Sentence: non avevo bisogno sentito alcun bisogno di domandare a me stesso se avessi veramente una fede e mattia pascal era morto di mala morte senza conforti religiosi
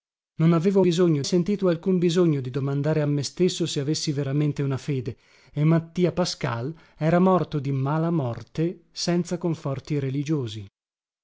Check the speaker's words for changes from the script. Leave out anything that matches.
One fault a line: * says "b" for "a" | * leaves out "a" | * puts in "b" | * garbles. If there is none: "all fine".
all fine